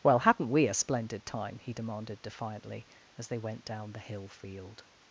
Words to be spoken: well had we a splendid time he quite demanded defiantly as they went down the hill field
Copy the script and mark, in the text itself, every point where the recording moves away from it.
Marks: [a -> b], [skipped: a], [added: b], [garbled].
well [had -> hadn't] we a splendid time he [skipped: quite] demanded defiantly as they went down the hill field